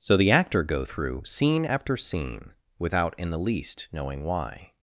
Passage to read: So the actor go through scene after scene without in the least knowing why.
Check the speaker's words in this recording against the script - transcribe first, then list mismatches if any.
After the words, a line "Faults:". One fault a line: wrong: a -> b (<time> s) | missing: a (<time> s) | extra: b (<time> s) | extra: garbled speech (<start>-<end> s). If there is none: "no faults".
So the actor go through scene after scene without in the least knowing why.
Faults:
no faults